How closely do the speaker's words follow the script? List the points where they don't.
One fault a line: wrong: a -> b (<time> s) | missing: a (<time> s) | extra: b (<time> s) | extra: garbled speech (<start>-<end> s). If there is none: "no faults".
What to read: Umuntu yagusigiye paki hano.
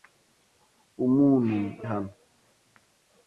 missing: yagusigiye paki (1.6 s)